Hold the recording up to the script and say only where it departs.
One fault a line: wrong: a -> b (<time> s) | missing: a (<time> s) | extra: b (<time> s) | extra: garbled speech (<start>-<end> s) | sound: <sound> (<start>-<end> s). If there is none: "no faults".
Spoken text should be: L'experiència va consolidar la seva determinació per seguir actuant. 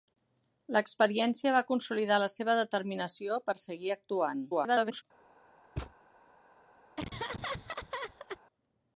extra: garbled speech (4.5-5.0 s)
sound: thud (5.8-5.9 s)
sound: laugh (7.0-8.4 s)